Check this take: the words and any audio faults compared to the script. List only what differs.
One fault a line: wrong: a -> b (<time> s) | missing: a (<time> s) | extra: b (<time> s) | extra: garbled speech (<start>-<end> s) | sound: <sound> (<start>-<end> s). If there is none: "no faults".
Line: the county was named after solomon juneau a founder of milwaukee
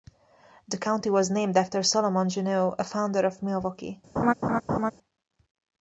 sound: laugh (4.2-4.9 s)